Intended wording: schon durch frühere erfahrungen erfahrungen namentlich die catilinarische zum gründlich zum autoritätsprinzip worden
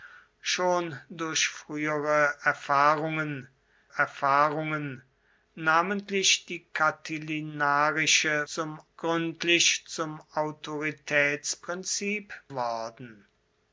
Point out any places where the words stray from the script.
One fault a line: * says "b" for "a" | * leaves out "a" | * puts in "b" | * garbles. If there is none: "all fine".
all fine